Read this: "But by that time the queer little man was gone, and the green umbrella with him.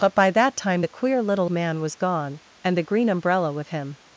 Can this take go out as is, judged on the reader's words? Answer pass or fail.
pass